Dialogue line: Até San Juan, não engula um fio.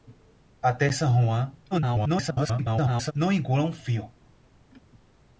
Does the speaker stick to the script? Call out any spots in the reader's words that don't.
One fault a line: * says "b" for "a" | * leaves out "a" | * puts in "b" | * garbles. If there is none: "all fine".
* garbles